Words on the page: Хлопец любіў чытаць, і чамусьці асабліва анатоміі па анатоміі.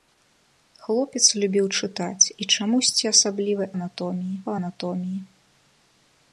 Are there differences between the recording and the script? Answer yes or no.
no